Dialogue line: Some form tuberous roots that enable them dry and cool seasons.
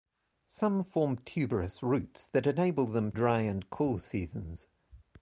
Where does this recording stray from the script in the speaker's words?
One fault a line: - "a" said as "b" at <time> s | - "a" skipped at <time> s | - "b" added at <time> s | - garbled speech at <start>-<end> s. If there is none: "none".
none